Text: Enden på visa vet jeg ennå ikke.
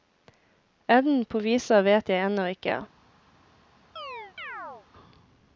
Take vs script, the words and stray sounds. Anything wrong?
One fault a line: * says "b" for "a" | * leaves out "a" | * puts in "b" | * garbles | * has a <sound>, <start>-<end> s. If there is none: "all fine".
* has a chirp, 4.0-4.9 s